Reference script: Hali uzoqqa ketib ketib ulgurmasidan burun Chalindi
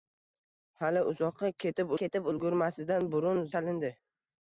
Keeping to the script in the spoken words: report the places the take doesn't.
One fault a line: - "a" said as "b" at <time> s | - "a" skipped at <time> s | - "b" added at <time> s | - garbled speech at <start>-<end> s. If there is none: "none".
none